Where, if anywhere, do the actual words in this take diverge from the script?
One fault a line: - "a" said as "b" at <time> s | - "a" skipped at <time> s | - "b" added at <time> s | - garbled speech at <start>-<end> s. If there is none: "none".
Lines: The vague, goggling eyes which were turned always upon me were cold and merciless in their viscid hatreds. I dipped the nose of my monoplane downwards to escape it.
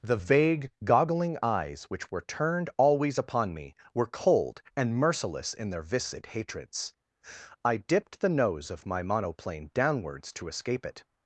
none